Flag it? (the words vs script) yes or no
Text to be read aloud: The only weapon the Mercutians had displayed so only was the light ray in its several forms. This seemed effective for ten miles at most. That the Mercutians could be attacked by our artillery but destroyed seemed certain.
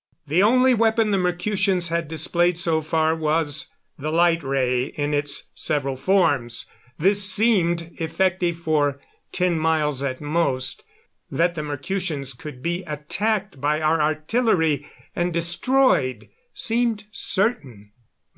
yes